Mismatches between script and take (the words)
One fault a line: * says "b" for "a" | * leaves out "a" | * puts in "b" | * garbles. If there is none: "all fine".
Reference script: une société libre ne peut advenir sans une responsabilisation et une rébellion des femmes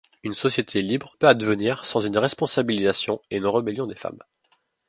* leaves out "ne"